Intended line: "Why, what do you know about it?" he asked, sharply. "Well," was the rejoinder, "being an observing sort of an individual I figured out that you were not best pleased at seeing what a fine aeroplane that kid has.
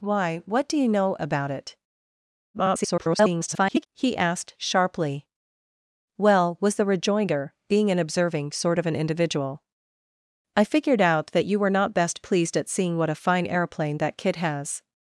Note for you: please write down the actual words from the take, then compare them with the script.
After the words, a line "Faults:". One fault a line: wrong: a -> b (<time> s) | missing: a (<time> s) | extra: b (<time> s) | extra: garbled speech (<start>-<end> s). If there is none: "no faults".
"Why, what do you know about it?" [garbled] he asked, sharply. "Well," was the rejoinder, "being an observing sort of an individual I figured out that you were not best pleased at seeing what a fine aeroplane that kid has.
Faults:
extra: garbled speech (2.5-3.9 s)